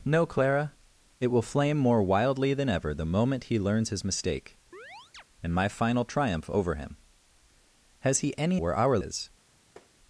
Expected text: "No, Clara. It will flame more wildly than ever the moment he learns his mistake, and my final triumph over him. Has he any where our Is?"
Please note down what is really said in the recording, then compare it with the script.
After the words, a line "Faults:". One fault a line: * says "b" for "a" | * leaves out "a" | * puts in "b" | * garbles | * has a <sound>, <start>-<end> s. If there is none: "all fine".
"No, Clara. It will flame more wildly than ever the moment he learns his mistake, and my final triumph over him. Has he any where our Is?"
Faults:
* has a chirp, 4.7-5.2 s
* has a tap, 9.8-9.9 s